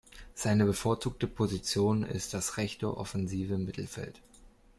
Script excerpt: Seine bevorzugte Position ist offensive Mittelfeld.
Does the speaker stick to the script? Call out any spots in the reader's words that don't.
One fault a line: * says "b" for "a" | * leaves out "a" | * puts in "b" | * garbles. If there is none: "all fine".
* puts in "das rechte"